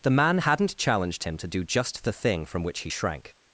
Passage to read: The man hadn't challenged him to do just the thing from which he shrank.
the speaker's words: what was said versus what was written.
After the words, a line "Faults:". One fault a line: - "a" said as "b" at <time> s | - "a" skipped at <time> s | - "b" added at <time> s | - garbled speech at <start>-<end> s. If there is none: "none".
The man hadn't challenged him to do just the thing from which he shrank.
Faults:
none